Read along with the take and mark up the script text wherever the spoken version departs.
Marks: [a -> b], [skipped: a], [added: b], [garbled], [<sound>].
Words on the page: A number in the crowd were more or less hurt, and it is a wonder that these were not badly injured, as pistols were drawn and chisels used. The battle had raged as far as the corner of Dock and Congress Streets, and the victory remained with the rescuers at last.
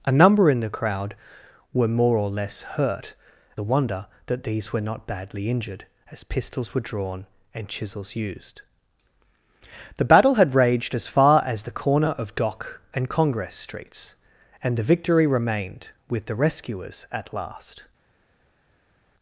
A number in the crowd were more or less hurt, [skipped: and it is] a wonder that these were not badly injured, as pistols were drawn and chisels used. The battle had raged as far as the corner of Dock and Congress Streets, and the victory remained with the rescuers at last.